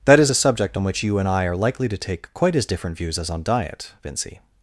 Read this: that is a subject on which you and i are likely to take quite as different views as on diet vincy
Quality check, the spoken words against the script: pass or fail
pass